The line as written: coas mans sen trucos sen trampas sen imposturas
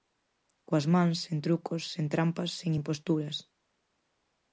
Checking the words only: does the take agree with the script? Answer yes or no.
yes